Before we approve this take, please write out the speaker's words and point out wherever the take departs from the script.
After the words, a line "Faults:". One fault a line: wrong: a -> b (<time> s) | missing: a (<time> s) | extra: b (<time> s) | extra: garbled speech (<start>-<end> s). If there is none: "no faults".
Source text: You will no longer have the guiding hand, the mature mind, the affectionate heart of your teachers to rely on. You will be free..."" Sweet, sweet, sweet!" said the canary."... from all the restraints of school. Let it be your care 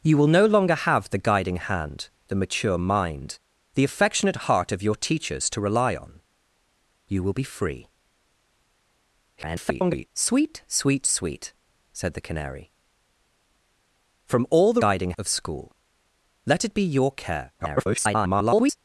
You will no longer have the guiding hand, the mature mind, the affectionate heart of your teachers to rely on. You will be free..."" [garbled] Sweet, sweet, sweet!" said the canary."... from all the guiding of school. Let it be your care [garbled]
Faults:
extra: garbled speech (9.4-10.1 s)
wrong: restraints -> guiding (14.8 s)
extra: garbled speech (17.6-18.8 s)